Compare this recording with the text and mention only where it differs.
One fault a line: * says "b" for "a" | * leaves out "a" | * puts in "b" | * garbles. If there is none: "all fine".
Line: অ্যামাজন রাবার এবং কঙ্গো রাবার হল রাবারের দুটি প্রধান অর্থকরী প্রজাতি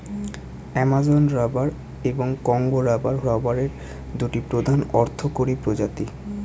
* leaves out "হল"